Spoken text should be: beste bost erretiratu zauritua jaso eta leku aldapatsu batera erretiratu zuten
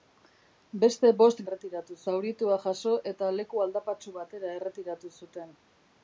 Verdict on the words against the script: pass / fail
pass